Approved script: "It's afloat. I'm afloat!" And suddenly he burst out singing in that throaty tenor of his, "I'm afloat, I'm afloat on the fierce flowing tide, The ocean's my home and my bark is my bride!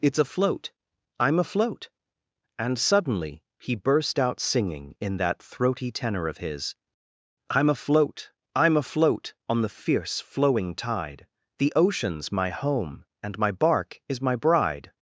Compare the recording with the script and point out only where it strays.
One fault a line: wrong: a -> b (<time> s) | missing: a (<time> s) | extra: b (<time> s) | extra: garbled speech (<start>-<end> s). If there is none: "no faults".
no faults